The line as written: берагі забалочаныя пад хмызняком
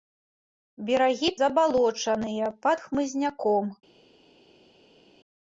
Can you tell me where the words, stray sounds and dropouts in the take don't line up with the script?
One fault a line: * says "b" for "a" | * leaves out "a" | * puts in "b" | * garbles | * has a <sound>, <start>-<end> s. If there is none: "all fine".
all fine